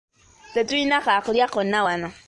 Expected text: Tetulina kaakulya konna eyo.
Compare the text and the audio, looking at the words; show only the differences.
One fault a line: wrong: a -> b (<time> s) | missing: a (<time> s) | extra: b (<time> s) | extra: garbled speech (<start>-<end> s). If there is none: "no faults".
wrong: eyo -> wano (1.8 s)